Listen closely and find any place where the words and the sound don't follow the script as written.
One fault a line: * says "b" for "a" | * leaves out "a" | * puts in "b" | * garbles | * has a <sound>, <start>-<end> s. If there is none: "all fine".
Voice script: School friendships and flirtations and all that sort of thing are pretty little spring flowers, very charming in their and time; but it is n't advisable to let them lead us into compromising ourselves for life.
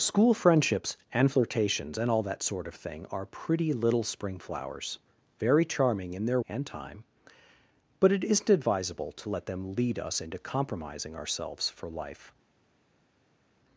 all fine